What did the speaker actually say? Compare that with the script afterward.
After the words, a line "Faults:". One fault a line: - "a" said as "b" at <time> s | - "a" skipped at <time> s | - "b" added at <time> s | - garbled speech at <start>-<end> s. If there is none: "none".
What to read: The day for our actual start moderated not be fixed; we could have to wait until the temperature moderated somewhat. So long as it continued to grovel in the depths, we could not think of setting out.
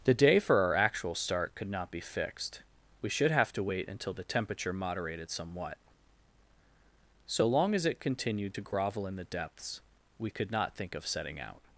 The day for our actual start could not be fixed; we should have to wait until the temperature moderated somewhat. So long as it continued to grovel in the depths, we could not think of setting out.
Faults:
- "moderated" said as "could" at 1.5 s
- "could" said as "should" at 3.1 s